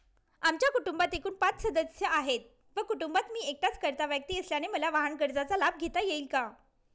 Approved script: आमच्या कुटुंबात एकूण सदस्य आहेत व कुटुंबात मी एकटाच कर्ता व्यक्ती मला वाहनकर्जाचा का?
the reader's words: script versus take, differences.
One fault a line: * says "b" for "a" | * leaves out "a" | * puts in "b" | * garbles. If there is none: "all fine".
* puts in "पाच"
* puts in "असल्याने"
* puts in "लाभ घेता येईल"